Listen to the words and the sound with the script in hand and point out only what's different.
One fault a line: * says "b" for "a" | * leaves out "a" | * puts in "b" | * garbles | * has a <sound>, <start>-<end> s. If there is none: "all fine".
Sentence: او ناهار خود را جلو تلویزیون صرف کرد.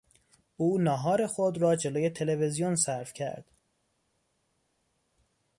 all fine